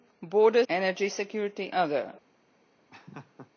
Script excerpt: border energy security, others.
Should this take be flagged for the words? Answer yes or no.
no